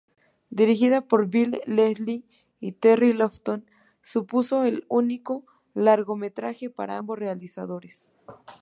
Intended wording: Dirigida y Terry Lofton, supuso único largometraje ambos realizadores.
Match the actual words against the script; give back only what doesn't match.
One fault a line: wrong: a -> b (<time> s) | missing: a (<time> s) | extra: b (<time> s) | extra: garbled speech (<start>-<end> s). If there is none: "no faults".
extra: por Bill Leslie (1.0 s)
extra: el (4.6 s)
extra: para (6.7 s)